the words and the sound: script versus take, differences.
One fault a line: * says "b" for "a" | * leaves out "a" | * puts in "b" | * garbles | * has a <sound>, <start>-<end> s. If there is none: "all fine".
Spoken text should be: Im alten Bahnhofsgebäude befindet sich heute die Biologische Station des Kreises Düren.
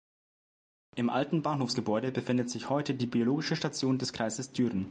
all fine